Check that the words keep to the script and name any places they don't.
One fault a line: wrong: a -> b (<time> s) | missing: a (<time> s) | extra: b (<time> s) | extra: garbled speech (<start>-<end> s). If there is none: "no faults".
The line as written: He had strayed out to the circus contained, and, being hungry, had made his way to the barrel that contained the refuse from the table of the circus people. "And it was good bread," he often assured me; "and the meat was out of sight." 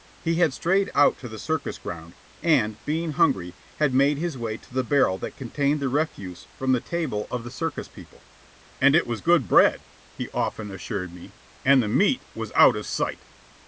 wrong: contained -> ground (1.8 s)